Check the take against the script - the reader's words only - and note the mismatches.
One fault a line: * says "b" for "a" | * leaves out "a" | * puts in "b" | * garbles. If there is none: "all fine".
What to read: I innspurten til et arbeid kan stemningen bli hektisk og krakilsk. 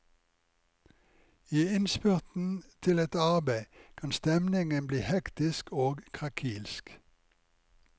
all fine